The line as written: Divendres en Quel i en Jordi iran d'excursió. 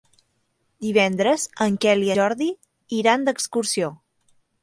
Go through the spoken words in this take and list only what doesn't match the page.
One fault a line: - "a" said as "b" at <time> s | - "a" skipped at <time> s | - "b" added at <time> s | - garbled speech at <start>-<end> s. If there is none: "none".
- "en" skipped at 2.1 s